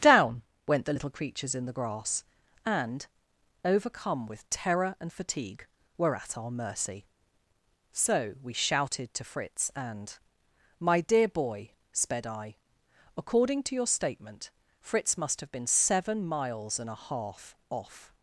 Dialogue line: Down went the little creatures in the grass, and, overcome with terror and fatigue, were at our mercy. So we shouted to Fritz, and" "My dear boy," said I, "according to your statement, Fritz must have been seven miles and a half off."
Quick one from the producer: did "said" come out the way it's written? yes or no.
no